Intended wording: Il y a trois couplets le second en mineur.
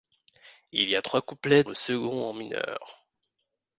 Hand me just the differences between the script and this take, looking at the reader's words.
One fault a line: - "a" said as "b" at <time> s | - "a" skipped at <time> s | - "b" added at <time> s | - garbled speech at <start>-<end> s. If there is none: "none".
none